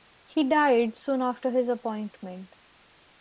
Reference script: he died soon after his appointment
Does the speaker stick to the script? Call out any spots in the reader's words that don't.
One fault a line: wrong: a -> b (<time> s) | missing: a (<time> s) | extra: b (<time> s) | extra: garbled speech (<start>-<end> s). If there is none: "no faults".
no faults